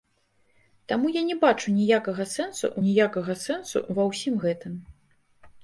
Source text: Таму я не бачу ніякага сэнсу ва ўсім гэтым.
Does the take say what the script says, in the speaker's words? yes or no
no